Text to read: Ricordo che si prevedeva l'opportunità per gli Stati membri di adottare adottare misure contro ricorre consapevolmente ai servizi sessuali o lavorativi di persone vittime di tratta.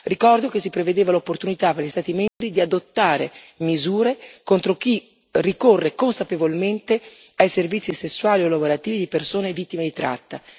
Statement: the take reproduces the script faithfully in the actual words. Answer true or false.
false